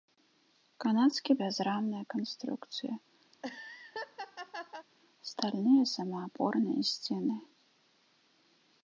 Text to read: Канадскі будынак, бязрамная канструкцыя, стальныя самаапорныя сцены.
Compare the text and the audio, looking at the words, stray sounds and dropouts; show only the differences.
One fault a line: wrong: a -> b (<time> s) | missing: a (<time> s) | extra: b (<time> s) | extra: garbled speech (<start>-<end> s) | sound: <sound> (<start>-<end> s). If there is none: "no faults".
missing: будынак (1.3 s)
sound: laugh (3.3-4.9 s)